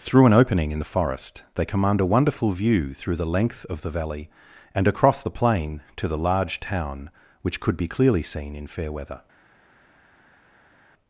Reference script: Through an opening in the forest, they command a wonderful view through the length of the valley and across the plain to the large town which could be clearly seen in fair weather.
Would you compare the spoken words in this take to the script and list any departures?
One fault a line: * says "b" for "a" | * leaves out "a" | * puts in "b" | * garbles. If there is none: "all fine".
all fine